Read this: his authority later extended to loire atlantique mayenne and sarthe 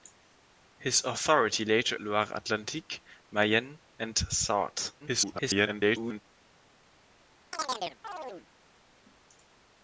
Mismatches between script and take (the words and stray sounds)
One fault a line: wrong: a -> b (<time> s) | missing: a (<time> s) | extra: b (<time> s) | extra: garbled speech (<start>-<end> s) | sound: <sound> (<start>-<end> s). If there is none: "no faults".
missing: extended to (1.9 s)
extra: garbled speech (5.0-6.2 s)
sound: chirp (7.5-8.5 s)